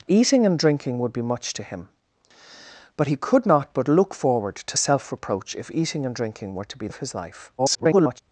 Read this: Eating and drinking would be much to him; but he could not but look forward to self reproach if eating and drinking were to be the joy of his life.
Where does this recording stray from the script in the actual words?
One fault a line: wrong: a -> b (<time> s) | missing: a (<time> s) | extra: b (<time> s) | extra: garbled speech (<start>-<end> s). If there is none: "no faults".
missing: the joy (6.9 s)
extra: garbled speech (7.6-8.2 s)